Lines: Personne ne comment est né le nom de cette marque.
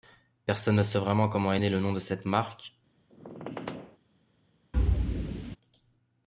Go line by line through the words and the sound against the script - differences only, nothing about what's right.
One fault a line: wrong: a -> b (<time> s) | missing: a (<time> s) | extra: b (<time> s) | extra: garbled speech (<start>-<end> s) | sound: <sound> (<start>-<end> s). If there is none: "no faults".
extra: sait vraiment (0.8 s)
sound: squeak (3.1-4.0 s)
sound: thud (4.7-5.6 s)